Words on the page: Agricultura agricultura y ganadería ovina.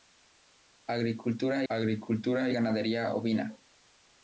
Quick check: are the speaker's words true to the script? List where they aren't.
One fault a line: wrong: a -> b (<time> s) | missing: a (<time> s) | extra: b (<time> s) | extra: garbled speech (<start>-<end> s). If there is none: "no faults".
no faults